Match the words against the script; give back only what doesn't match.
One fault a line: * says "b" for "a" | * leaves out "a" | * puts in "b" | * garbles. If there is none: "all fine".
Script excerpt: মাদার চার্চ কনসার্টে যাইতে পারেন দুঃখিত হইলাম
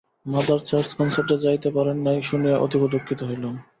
* puts in "নাই শুনিয়া অতীব"